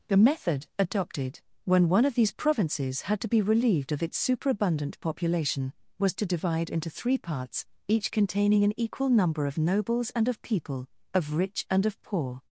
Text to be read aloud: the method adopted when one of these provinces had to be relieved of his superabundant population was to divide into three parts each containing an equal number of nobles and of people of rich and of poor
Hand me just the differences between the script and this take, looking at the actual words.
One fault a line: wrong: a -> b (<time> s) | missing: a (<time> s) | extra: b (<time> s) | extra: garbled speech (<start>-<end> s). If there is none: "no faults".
wrong: his -> its (4.0 s)